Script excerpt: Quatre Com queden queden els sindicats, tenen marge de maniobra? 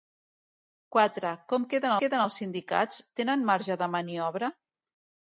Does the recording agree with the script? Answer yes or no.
yes